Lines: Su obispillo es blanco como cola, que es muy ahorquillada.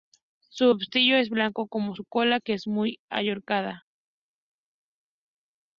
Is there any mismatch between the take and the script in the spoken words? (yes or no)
yes